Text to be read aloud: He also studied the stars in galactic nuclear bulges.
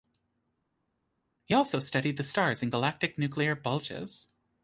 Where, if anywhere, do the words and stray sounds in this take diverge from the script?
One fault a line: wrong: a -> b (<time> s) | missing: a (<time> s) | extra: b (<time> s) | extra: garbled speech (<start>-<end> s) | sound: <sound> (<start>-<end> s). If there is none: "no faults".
no faults